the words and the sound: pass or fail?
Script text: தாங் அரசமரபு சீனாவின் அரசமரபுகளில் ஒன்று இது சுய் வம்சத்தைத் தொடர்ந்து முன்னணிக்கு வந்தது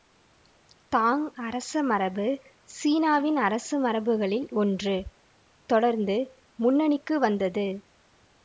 fail